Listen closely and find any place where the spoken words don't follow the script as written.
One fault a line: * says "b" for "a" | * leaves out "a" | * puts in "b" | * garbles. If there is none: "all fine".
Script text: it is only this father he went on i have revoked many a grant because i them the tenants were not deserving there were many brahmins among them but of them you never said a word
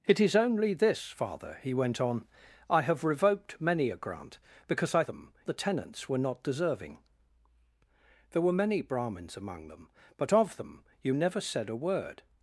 all fine